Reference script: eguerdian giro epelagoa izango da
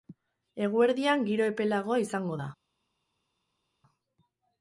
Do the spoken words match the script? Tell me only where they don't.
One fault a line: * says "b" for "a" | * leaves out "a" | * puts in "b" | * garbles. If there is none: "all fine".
all fine